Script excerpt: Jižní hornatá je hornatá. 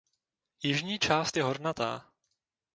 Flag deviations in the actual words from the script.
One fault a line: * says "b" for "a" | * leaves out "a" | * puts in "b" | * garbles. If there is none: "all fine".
* says "část" for "hornatá"